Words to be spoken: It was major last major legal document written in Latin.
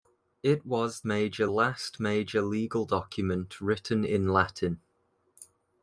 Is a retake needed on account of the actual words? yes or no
no